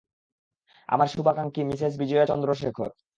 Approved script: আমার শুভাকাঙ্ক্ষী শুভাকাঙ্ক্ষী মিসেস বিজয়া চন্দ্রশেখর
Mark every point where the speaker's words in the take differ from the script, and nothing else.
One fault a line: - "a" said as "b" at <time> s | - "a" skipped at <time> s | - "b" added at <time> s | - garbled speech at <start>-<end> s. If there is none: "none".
- "শুভাকাঙ্ক্ষী" skipped at 1.6 s